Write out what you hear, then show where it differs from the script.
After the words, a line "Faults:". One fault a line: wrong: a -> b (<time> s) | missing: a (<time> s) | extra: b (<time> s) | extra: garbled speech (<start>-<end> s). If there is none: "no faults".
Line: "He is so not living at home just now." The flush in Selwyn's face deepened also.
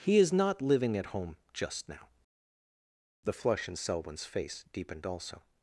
"He is not living at home just now." The flush in Selwyn's face deepened also.
Faults:
missing: so (0.3 s)